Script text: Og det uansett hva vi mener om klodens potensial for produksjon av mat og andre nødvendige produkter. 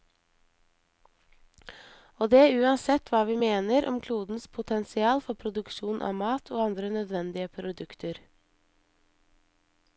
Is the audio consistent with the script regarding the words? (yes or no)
yes